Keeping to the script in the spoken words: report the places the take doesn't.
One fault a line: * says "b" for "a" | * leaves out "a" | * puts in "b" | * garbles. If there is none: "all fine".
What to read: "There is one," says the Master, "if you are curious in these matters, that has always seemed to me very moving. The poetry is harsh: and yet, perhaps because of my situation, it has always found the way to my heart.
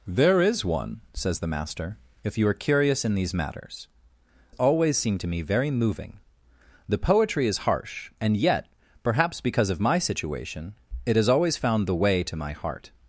* leaves out "that has"